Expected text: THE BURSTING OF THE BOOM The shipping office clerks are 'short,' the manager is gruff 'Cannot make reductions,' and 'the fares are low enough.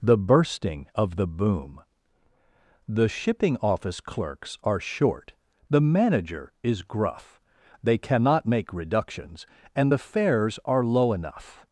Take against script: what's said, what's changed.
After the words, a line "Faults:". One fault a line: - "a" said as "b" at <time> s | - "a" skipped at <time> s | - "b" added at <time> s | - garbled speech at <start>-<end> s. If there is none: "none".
THE BURSTING OF THE BOOM The shipping office clerks are 'short,' the manager is gruff 'They cannot make reductions,' and 'the fares are low enough.
Faults:
- "They" added at 7.8 s